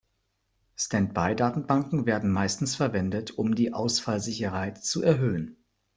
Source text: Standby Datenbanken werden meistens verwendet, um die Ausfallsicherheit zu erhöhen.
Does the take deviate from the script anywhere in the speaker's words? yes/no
no